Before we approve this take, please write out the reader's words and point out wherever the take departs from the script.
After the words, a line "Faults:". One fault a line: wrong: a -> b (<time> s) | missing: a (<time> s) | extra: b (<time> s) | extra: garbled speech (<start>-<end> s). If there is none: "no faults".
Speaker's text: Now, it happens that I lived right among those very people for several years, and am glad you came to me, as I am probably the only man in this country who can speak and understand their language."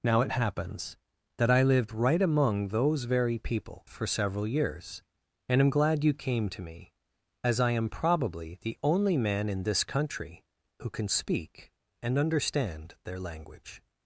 Now, it happens that I lived right among those very people for several years, and am glad you came to me, as I am probably the only man in this country who can speak and understand their language."
Faults:
no faults